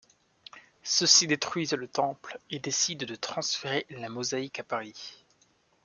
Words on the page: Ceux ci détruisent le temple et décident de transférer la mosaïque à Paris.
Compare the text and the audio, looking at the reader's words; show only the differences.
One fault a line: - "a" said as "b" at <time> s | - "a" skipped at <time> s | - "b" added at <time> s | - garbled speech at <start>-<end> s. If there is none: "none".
none